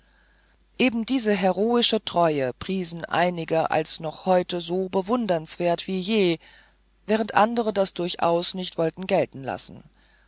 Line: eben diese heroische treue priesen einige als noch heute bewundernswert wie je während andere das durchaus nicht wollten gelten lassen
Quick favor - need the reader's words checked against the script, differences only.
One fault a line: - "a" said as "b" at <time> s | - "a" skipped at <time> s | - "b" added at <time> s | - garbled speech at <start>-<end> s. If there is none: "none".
- "so" added at 4.6 s